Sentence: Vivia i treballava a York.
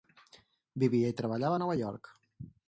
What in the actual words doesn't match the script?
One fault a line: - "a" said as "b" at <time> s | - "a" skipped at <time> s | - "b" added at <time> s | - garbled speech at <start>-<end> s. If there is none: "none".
- "Nova" added at 1.6 s